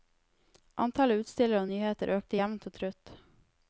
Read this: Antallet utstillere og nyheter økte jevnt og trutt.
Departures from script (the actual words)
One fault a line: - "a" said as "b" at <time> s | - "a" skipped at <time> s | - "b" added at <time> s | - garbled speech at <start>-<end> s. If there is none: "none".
none